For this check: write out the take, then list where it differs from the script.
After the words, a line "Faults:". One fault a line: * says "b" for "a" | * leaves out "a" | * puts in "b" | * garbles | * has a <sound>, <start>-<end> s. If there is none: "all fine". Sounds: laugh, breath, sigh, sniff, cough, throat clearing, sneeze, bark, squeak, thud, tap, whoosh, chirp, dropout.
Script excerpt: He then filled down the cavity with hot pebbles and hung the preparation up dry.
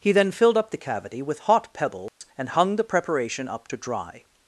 He then filled up the cavity with hot pebbles and hung the preparation up to dry.
Faults:
* says "up" for "down"
* has a dropout, 2.1-2.2 s
* puts in "to"